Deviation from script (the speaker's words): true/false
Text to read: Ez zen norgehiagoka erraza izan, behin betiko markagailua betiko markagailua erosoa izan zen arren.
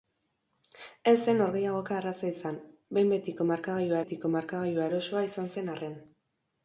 false